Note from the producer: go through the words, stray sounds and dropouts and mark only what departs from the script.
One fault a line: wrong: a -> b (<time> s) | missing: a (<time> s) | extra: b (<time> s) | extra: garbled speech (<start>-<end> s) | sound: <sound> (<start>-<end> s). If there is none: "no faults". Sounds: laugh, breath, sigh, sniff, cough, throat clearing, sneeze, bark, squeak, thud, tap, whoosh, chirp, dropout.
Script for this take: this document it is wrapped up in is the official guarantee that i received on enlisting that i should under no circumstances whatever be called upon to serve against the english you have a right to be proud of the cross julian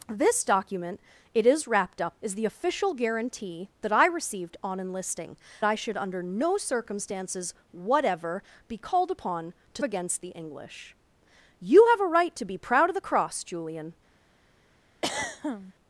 missing: in (2.2 s)
missing: that (5.4 s)
missing: serve (9.8 s)
sound: throat clearing (15.0-15.7 s)